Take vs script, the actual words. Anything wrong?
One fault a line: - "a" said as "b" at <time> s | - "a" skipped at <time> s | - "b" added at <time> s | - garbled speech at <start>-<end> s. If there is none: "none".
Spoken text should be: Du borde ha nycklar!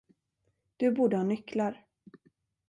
none